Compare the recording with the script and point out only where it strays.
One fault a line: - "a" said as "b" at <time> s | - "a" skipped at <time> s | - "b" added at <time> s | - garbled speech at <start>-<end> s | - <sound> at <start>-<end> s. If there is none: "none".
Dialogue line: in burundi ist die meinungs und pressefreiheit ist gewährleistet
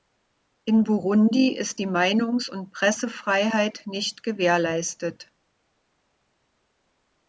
- "ist" said as "nicht" at 3.9 s